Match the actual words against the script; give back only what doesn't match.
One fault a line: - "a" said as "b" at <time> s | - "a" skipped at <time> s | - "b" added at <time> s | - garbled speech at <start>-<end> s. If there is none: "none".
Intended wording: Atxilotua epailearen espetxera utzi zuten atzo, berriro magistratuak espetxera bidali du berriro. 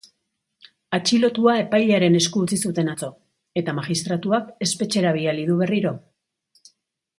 - "espetxera" said as "esku" at 2.2 s
- "berriro" said as "eta" at 3.6 s